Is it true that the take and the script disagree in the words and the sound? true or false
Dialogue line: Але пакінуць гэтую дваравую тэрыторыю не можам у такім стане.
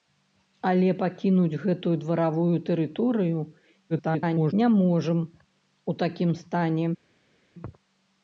true